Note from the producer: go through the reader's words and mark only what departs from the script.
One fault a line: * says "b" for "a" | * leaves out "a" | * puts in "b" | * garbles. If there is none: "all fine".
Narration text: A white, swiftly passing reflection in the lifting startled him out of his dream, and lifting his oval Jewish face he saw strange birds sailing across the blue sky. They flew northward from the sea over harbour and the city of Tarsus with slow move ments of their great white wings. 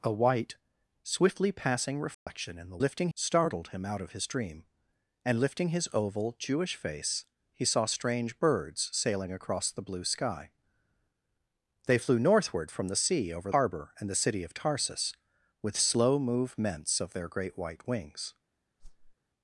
all fine